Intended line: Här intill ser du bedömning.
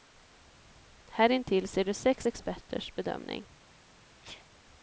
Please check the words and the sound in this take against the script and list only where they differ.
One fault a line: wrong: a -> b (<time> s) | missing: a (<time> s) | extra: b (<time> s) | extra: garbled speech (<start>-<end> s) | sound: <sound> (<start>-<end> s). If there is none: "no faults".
extra: sex experters (1.9 s)
sound: sneeze (4.2-4.5 s)